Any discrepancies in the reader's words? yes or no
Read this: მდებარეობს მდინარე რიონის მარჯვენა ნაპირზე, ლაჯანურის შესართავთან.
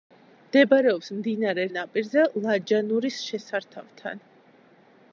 yes